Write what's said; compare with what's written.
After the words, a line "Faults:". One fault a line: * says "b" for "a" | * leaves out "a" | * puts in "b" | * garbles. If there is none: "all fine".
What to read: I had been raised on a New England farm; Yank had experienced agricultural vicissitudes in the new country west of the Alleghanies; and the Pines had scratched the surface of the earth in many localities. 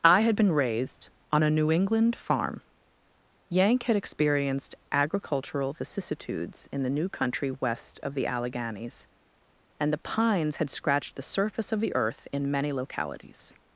I had been raised on a New England farm; Yank had experienced agricultural vicissitudes in the new country west of the Alleghanies; and the Pines had scratched the surface of the earth in many localities.
Faults:
all fine